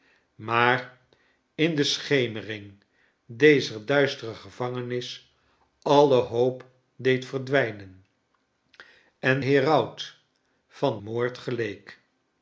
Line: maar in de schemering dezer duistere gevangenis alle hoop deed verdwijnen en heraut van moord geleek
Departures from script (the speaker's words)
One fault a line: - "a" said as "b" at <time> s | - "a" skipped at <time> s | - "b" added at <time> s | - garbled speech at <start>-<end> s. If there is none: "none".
none